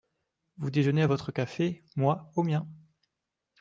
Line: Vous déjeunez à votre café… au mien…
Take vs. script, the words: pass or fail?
fail